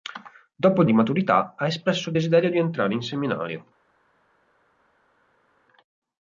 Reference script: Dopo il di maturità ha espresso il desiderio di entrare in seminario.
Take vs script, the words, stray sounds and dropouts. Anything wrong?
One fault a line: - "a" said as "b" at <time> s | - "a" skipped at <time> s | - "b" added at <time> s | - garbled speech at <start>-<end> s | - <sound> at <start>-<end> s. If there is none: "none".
none